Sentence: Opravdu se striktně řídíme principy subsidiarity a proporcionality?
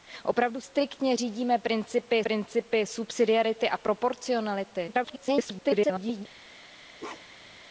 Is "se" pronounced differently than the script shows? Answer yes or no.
yes